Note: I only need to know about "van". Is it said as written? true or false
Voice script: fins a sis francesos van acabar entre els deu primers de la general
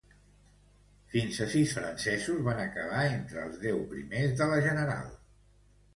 true